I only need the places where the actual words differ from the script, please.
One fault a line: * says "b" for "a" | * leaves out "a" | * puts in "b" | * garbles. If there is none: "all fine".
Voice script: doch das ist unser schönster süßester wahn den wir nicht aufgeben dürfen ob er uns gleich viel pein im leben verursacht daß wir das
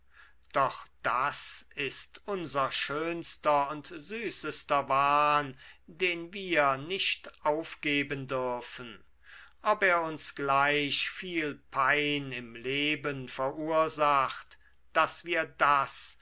* puts in "und"